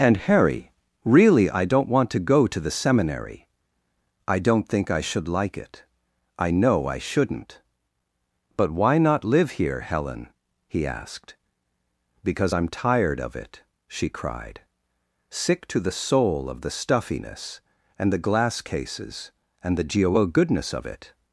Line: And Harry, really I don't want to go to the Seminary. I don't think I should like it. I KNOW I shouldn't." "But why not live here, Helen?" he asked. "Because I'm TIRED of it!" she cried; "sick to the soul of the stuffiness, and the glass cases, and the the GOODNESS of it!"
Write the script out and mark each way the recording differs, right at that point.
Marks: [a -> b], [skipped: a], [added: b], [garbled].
And Harry, really I don't want to go to the Seminary. I don't think I should like it. I KNOW I shouldn't." "But why not live here, Helen?" he asked. "Because I'm TIRED of it!" she cried; "sick to the soul of the stuffiness, and the glass cases, and the [the -> geo] GOODNESS of it!"